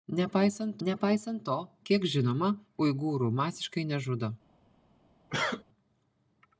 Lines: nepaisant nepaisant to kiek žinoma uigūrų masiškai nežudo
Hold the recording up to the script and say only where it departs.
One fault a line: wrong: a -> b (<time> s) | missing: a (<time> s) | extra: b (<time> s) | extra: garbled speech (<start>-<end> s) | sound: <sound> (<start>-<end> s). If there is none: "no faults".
sound: cough (5.3-5.6 s)